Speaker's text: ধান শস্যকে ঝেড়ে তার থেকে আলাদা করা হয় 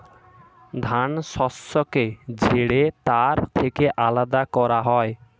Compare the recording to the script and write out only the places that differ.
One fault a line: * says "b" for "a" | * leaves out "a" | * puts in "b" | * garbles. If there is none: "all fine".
all fine